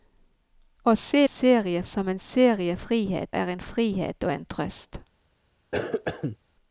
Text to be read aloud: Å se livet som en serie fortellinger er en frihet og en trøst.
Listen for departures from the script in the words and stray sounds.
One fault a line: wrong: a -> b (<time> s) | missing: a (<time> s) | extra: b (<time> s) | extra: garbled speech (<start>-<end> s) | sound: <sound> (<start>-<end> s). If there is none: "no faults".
wrong: livet -> serie (1.3 s)
wrong: fortellinger -> frihet (2.8 s)
sound: cough (5.7-6.4 s)